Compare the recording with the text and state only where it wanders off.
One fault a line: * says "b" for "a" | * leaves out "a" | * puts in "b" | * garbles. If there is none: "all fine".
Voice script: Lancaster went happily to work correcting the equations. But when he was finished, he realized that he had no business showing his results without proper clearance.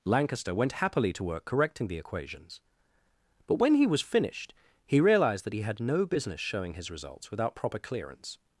all fine